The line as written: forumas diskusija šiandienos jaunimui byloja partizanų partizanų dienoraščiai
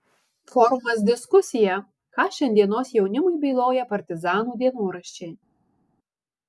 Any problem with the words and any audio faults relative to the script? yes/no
yes